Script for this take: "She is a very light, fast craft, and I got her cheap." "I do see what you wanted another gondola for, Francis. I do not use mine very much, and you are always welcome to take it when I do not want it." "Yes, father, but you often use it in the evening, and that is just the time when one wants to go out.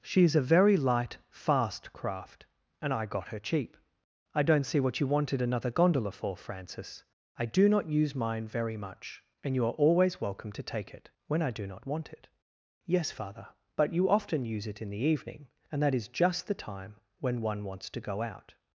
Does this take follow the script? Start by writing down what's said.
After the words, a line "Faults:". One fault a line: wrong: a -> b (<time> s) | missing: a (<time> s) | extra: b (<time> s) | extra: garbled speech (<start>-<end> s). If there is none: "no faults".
"She is a very light, fast craft, and I got her cheap." "I don't see what you wanted another gondola for, Francis. I do not use mine very much, and you are always welcome to take it when I do not want it." "Yes, father, but you often use it in the evening, and that is just the time when one wants to go out.
Faults:
wrong: do -> don't (4.4 s)